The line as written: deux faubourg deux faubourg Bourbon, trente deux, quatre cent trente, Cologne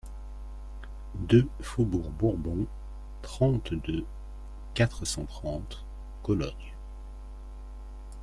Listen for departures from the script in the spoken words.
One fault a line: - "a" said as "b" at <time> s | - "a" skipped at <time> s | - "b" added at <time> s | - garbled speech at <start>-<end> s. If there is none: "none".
- "deux faubourg" skipped at 2.1 s